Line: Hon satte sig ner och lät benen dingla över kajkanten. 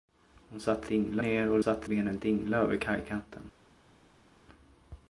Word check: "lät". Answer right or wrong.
wrong